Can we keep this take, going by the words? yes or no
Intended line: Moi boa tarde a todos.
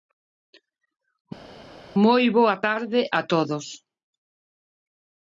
yes